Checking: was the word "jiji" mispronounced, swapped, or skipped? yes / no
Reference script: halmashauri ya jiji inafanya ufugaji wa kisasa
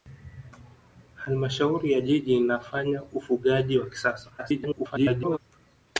no